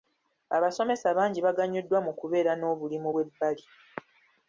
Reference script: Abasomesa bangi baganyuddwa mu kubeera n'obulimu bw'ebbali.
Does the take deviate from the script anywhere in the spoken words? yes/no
no